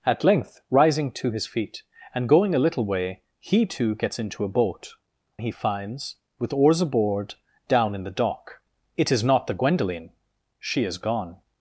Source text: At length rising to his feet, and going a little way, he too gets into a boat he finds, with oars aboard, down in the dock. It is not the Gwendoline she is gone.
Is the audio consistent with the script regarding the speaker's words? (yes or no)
yes